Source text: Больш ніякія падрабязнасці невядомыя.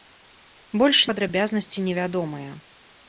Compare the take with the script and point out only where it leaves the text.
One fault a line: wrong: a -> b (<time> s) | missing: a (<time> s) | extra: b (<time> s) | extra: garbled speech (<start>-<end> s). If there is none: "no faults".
missing: ніякія (1.0 s)